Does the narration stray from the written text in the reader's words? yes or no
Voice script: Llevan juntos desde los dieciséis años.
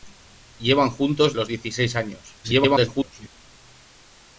yes